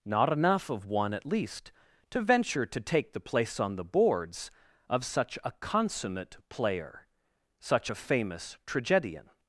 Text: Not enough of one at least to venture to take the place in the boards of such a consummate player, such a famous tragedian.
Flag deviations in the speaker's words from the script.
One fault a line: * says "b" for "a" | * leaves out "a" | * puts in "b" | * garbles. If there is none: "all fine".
* says "on" for "in"